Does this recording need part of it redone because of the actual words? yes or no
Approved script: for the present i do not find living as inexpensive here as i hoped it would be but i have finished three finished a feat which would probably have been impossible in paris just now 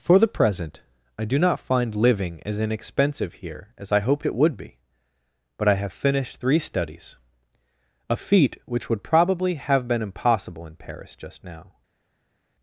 yes